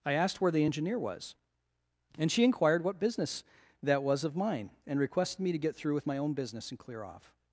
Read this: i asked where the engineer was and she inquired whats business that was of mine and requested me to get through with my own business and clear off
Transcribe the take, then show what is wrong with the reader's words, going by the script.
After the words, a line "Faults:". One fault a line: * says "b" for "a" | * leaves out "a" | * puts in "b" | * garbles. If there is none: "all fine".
i asked where the engineer was and she inquired what business that was of mine and requested me to get through with my own business and clear off
Faults:
* says "what" for "whats"